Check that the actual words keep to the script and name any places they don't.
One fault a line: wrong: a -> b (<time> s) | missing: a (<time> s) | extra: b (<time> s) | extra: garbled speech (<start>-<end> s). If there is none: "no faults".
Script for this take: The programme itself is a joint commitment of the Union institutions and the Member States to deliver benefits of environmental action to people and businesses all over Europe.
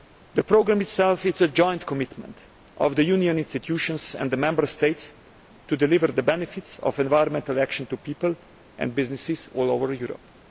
extra: the (6.1 s)